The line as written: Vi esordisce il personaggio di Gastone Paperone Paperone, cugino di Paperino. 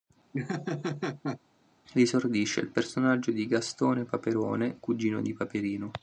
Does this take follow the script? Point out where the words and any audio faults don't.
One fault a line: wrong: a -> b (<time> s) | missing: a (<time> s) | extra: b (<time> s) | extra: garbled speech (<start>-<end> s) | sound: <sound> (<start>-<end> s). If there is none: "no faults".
sound: laugh (0.3-1.4 s)
missing: Paperone (4.8 s)